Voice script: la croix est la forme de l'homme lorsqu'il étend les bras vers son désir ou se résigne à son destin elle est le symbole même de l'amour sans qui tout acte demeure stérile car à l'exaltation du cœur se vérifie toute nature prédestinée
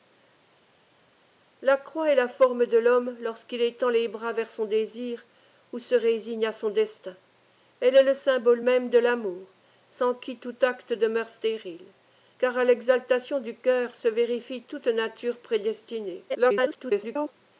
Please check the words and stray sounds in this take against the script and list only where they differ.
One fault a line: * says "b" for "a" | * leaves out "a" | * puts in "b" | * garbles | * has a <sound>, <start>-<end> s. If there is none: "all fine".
* garbles